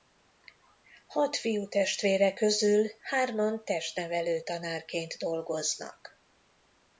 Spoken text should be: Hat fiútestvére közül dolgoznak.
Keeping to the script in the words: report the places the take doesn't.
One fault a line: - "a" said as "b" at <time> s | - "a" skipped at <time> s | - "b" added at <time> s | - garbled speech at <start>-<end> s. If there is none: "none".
- "hárman testnevelő tanárként" added at 3.0 s